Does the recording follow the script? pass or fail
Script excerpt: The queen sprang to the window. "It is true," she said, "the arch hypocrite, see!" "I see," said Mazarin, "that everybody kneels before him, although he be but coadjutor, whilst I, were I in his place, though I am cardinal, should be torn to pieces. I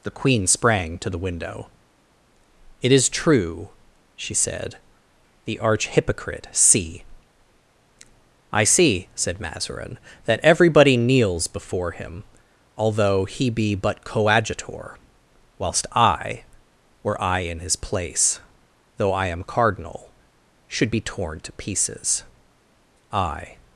pass